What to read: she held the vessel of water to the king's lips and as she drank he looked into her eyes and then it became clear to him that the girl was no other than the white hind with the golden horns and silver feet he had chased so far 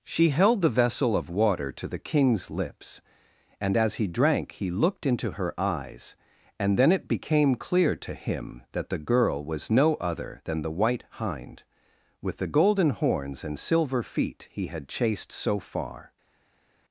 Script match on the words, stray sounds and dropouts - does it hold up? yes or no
no